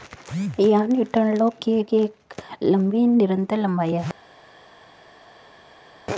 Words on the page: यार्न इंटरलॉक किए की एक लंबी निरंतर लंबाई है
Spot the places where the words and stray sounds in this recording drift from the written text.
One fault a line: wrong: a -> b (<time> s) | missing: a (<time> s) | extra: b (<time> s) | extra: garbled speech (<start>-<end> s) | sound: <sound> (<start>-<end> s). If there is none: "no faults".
no faults